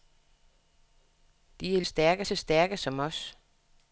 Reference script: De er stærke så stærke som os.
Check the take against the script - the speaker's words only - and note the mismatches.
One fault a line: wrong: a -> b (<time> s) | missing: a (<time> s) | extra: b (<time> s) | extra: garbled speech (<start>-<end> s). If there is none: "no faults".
no faults